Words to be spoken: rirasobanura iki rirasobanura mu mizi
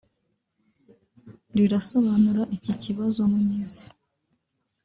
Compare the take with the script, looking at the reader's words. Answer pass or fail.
fail